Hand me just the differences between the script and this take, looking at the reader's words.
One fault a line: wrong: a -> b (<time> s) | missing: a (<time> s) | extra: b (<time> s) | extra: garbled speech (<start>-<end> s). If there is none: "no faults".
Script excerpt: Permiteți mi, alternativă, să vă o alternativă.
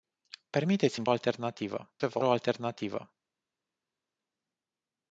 no faults